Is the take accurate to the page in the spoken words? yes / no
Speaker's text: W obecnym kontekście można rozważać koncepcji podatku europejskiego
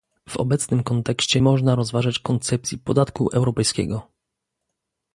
yes